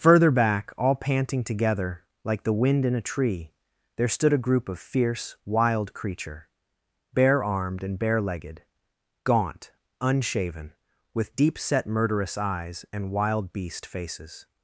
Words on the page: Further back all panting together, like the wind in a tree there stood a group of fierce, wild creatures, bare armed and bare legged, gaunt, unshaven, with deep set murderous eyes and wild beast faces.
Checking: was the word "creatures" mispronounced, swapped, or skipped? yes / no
yes